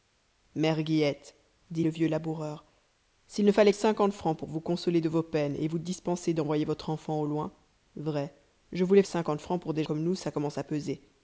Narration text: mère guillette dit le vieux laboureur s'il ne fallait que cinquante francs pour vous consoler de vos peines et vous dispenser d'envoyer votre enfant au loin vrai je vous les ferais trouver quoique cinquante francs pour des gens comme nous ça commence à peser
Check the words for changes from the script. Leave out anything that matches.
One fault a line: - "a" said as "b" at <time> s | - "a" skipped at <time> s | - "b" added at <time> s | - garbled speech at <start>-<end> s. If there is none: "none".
- "que" skipped at 3.7 s
- "ferais trouver quoique" skipped at 9.0 s
- "gens" skipped at 9.8 s